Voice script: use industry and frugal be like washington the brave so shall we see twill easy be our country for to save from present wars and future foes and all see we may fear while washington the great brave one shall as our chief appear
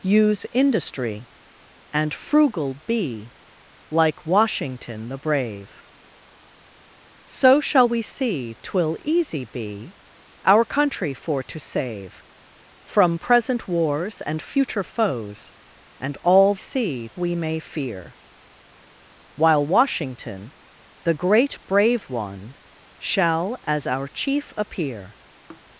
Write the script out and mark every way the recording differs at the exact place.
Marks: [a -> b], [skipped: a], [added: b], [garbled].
use industry and frugal be like washington the brave so shall we see twill easy be our country for to save from present wars and future foes and all see we may fear while washington the great brave one shall as our chief appear